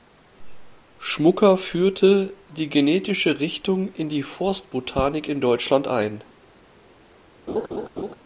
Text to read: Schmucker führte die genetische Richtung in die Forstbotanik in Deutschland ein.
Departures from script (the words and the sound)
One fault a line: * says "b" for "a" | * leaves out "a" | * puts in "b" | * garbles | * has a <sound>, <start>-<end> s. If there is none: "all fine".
* has a laugh, 7.5-8.2 s